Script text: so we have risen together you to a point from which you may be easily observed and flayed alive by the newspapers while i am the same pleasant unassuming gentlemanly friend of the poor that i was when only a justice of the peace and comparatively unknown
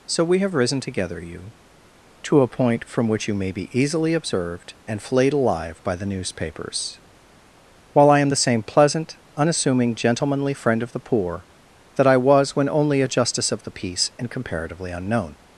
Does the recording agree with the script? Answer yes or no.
yes